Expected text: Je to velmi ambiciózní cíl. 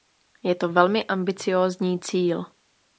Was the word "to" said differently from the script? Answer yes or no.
no